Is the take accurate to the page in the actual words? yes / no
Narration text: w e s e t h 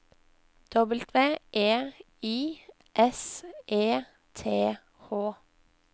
no